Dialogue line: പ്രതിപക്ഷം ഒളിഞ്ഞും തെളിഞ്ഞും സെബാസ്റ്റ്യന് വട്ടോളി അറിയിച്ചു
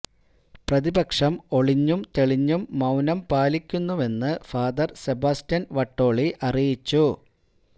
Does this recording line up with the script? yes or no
no